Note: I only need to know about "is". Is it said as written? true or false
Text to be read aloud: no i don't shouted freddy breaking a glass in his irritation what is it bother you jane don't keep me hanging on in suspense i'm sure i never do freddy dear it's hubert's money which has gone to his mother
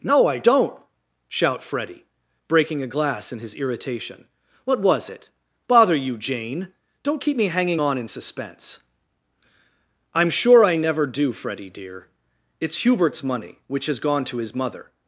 false